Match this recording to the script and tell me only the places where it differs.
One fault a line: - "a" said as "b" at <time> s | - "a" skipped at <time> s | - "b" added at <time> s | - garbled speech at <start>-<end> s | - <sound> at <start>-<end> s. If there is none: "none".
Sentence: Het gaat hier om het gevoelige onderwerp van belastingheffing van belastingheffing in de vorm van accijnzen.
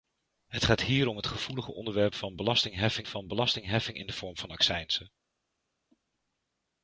none